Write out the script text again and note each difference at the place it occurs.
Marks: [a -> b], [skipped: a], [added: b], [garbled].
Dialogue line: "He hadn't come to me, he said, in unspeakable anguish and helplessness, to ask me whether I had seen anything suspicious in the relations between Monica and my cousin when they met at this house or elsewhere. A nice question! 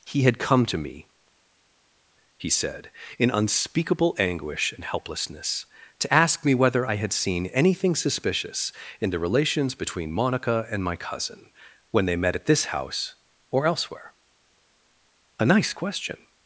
"He [hadn't -> had] come to me, he said, in unspeakable anguish and helplessness, to ask me whether I had seen anything suspicious in the relations between Monica and my cousin when they met at this house or elsewhere. A nice question!